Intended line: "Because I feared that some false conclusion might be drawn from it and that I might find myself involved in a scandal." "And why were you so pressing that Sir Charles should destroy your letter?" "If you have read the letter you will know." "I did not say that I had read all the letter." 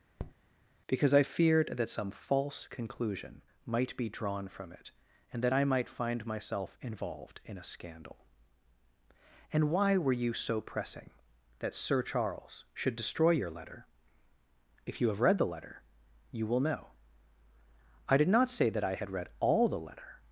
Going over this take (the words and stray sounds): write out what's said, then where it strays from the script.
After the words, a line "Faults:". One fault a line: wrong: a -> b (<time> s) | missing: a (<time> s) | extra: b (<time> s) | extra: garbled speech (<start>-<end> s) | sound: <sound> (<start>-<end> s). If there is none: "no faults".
"Because I feared that some false conclusion might be drawn from it and that I might find myself involved in a scandal." "And why were you so pressing that Sir Charles should destroy your letter?" "If you have read the letter you will know." "I did not say that I had read all the letter."
Faults:
sound: tap (0.2-0.3 s)